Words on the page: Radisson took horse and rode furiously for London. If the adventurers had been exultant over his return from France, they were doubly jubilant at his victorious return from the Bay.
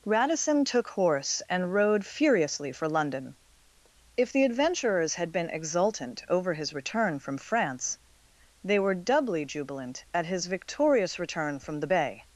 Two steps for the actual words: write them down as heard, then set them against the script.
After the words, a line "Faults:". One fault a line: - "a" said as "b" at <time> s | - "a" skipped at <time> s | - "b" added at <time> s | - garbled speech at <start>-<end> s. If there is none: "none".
Radisson took horse and rode furiously for London. If the adventurers had been exultant over his return from France, they were doubly jubilant at his victorious return from the Bay.
Faults:
none